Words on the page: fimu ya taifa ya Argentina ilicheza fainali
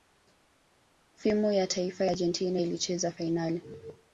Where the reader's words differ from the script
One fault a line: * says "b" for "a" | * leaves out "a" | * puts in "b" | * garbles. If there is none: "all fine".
* leaves out "ya"